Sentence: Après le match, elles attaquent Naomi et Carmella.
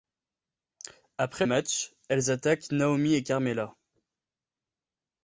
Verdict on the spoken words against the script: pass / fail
fail